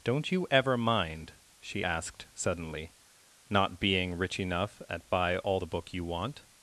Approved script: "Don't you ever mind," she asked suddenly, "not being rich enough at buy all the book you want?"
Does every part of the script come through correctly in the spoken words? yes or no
yes